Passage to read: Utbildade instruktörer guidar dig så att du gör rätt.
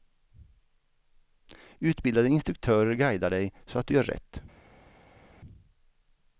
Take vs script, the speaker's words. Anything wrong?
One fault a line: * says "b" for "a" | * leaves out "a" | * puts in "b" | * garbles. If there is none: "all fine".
all fine